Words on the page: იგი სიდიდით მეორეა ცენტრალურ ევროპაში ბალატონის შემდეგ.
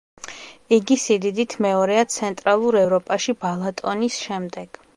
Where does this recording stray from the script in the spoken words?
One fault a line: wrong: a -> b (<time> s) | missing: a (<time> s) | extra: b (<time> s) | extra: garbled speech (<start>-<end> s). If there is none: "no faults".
no faults